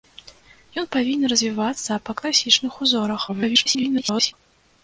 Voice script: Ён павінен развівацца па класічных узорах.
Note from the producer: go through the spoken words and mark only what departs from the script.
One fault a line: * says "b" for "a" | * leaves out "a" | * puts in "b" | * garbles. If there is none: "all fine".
* garbles